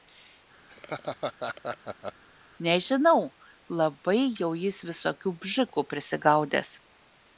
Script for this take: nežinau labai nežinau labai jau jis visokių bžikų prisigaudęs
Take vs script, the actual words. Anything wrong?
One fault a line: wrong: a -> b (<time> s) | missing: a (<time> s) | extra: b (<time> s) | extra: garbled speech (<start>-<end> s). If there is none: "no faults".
missing: nežinau labai (4.2 s)